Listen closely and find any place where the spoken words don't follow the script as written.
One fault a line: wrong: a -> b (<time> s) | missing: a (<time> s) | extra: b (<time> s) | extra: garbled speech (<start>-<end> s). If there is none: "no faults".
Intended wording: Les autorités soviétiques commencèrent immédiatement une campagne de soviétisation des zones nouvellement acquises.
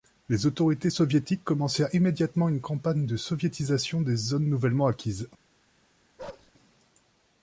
no faults